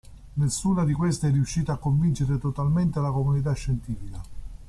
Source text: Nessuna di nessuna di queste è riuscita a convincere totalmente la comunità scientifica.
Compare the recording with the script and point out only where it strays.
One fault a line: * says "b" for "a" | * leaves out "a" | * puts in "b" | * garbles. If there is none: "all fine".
* leaves out "nessuna di"